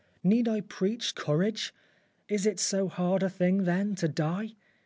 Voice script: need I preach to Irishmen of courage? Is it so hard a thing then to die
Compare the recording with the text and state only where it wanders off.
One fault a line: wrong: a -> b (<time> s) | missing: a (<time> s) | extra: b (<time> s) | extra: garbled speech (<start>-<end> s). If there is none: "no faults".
missing: to Irishmen of (1.1 s)